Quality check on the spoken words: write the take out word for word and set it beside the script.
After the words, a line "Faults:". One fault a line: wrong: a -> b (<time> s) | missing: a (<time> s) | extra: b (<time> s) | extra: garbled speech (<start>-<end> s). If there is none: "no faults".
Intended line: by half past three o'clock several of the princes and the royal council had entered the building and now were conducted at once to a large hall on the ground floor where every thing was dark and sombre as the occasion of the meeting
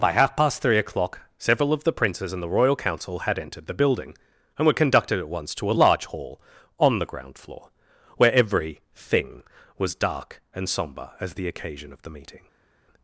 by half past three o'clock several of the princes and the royal council had entered the building and were conducted at once to a large hall on the ground floor where every thing was dark and sombre as the occasion of the meeting
Faults:
missing: now (4.7 s)